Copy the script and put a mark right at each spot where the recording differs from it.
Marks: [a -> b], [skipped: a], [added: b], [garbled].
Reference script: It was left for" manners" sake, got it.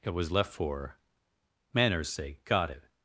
It was left for" manners" sake, got it.